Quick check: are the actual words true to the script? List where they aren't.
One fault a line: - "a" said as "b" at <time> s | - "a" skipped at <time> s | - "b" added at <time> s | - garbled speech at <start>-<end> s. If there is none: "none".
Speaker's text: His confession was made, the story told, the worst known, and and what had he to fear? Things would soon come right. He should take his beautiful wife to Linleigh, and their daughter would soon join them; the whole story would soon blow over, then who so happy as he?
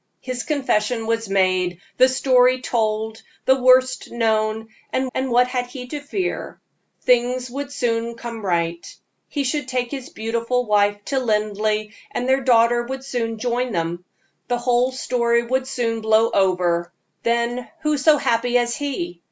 none